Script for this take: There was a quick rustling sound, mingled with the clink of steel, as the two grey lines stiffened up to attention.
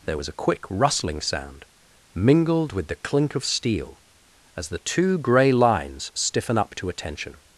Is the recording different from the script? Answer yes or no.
yes